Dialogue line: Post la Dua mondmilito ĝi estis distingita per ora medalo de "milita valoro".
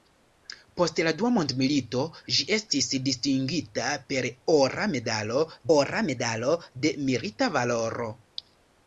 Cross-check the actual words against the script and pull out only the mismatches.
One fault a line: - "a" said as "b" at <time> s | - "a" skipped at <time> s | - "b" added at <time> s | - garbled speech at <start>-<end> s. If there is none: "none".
- "ora medalo" added at 5.7 s